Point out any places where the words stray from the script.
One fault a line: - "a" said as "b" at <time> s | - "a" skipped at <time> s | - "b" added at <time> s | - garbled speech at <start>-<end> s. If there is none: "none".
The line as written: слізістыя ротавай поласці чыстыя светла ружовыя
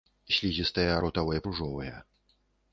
- "поласці чыстыя светла" skipped at 1.4 s